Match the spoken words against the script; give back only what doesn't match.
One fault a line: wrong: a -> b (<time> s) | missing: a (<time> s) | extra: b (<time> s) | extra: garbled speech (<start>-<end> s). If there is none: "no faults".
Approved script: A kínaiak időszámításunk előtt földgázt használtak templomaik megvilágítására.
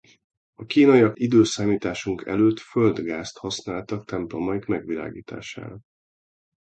no faults